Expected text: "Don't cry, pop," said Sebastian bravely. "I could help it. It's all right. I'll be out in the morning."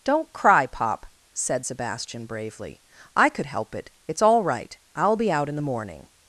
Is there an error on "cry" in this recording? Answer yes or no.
no